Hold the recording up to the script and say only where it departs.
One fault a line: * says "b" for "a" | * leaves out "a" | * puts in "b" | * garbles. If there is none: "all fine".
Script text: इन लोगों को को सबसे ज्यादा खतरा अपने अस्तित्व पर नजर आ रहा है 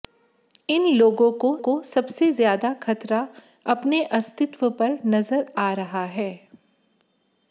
all fine